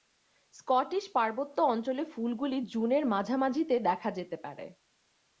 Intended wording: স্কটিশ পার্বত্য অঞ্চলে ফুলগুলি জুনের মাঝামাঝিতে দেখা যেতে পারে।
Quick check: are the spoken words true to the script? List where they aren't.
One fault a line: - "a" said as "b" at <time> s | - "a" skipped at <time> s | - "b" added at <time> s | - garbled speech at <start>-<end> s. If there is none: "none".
none